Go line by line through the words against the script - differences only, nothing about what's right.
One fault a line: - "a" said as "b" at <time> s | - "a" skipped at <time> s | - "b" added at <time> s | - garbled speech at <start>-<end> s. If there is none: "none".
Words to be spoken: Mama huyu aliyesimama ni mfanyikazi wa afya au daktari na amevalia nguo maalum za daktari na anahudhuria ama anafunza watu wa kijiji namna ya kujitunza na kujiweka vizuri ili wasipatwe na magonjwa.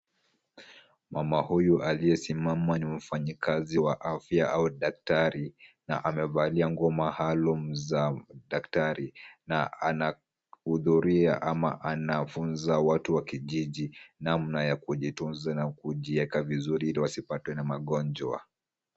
none